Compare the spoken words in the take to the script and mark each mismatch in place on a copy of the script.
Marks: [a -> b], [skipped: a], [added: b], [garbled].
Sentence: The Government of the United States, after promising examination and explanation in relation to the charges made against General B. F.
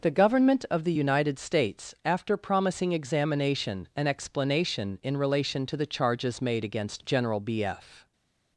The Government of the United States, after promising examination and explanation in relation to the charges made against General B. F.